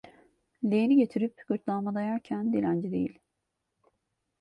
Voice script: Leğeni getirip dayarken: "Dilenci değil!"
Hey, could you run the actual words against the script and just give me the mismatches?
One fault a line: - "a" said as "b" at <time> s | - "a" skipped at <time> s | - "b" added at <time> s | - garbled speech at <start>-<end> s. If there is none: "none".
- "gırtlağıma" added at 1.5 s